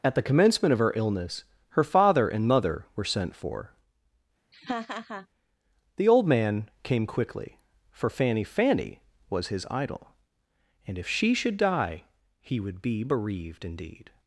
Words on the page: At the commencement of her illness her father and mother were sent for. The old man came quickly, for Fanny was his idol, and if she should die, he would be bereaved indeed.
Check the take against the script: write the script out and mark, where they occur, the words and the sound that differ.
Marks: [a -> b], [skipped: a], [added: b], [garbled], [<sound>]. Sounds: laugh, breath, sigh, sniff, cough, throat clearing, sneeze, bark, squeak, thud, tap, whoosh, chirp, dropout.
At the commencement of her illness her father and mother were sent for. [laugh] The old man came quickly, for Fanny [added: Fanny] was his idol, and if she should die, he would be bereaved indeed.